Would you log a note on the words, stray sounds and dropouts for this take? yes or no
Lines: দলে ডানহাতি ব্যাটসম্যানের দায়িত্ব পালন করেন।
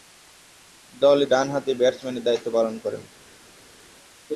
no